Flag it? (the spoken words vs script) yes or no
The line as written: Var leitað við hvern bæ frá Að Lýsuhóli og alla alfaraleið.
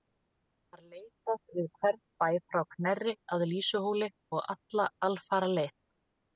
yes